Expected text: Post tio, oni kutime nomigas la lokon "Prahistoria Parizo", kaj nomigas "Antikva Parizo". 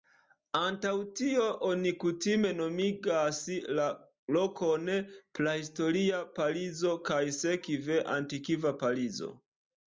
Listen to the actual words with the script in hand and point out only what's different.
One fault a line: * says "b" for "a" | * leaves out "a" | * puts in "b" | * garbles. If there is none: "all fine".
* says "Antaŭ" for "Post"
* says "sekve" for "nomigas"